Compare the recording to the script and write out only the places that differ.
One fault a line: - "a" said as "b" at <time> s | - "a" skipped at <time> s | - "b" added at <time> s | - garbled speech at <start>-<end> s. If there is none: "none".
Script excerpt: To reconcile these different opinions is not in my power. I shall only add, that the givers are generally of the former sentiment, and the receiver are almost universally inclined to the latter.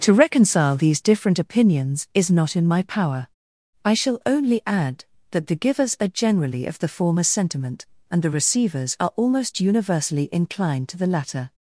- "receiver" said as "receivers" at 8.3 s